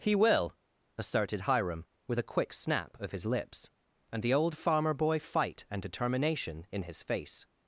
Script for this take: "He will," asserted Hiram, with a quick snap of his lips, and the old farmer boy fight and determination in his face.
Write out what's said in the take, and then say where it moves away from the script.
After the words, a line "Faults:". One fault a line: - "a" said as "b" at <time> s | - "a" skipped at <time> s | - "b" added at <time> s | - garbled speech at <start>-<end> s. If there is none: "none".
"He will," asserted Hiram, with a quick snap of his lips, and the old farmer boy fight and determination in his face.
Faults:
none